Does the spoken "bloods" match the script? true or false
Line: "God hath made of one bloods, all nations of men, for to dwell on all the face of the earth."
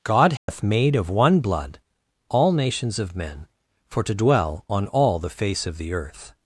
false